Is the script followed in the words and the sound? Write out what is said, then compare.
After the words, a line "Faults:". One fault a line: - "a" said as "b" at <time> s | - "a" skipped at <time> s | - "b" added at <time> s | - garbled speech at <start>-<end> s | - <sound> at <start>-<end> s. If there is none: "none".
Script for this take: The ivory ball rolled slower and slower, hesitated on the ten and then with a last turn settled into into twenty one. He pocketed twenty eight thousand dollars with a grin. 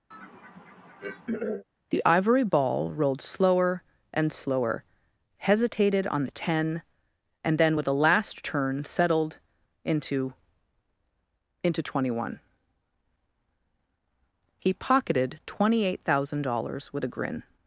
The ivory ball rolled slower and slower, hesitated on the ten and then with a last turn settled into into twenty one. He pocketed twenty eight thousand dollars with a grin.
Faults:
- throat clearing at 0.1-1.6 s